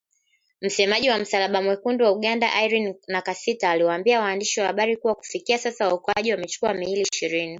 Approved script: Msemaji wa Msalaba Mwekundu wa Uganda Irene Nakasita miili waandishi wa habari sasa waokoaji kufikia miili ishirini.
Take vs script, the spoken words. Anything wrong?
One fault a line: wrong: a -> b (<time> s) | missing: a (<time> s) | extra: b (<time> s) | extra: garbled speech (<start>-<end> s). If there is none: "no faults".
wrong: miili -> aliwaambia (3.7 s)
extra: kuwa kufikia (5.0 s)
wrong: kufikia -> wamechukua (6.3 s)